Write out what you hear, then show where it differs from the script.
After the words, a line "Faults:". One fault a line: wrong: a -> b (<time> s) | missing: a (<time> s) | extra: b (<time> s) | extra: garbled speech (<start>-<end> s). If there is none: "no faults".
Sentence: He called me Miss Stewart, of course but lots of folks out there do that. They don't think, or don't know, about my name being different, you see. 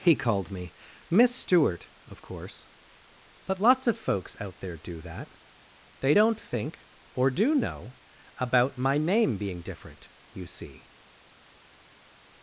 He called me Miss Stewart, of course but lots of folks out there do that. They don't think, or do know, about my name being different, you see.
Faults:
wrong: don't -> do (7.3 s)